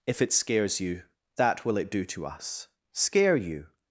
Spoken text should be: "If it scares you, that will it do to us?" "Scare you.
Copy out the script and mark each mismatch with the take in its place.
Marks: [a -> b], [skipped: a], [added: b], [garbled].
"If it scares you, that will it do to us?" "Scare you.